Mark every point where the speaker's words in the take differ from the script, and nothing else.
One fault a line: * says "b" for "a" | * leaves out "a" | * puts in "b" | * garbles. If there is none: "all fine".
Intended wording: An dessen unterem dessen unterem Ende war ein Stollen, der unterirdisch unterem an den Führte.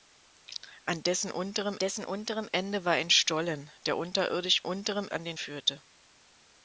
all fine